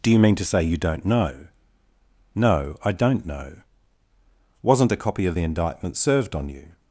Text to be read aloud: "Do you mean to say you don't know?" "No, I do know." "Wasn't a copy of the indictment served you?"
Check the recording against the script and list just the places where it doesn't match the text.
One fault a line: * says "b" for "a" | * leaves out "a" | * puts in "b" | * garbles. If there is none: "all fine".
* says "don't" for "do"
* puts in "on"